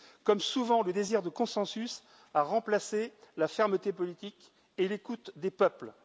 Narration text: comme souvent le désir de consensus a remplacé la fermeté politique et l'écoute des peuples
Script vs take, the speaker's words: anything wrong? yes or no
no